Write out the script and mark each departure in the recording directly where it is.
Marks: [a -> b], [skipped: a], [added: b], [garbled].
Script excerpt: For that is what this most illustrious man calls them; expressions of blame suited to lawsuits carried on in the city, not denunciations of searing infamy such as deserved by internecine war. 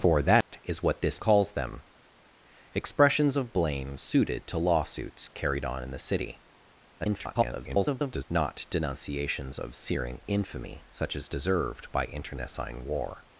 For that is what this [skipped: most illustrious man] calls them; expressions of blame suited to lawsuits carried on in the city, [garbled] not denunciations of searing infamy such as deserved by internecine war.